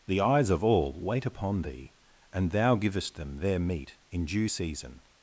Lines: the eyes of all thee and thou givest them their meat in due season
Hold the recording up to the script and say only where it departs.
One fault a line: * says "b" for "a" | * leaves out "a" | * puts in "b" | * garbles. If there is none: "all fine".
* puts in "wait upon"